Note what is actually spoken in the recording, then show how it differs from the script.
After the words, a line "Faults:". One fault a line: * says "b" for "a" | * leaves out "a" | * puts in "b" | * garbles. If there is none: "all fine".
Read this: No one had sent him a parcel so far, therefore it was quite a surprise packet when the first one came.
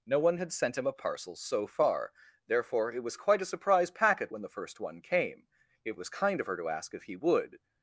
No one had sent him a parcel so far, therefore it was quite a surprise packet when the first one came. It was kind of her to ask if he would
Faults:
* puts in "It was kind of her to ask if he would"